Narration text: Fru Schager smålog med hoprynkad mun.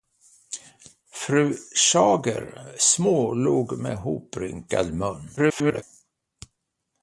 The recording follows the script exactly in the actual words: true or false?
false